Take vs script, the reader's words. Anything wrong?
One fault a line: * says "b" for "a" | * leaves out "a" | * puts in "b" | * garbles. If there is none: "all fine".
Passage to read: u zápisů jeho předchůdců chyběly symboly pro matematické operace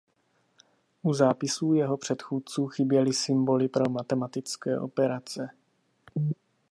all fine